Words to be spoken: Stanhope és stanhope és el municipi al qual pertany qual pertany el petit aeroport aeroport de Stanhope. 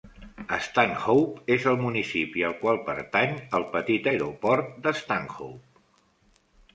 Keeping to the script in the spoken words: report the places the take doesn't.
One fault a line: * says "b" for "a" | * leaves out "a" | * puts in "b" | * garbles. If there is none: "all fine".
* leaves out "stanhope és"
* leaves out "qual pertany"
* leaves out "aeroport"